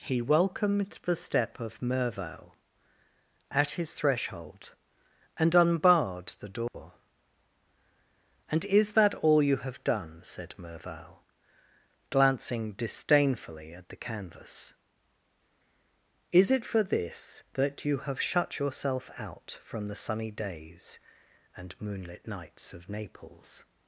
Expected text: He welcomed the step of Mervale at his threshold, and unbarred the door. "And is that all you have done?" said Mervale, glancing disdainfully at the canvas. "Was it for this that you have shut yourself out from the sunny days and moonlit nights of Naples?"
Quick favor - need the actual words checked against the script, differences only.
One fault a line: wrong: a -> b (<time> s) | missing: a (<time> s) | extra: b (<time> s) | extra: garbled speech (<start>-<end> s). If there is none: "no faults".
wrong: Was -> Is (16.3 s)